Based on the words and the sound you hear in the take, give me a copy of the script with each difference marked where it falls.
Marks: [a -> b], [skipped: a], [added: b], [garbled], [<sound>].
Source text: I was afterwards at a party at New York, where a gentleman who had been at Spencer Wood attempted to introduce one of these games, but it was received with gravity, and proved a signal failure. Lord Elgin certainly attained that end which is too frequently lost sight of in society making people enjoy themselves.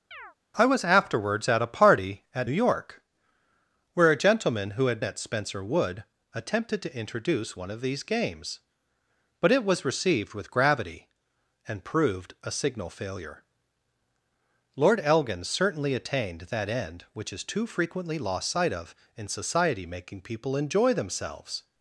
[chirp] I was afterwards at a party at [skipped: New] York, where a gentleman who had [skipped: been] at Spencer Wood attempted to introduce one of these games, but it was received with gravity, and proved a signal failure. Lord Elgin certainly attained that end which is too frequently lost sight of in society making people enjoy themselves.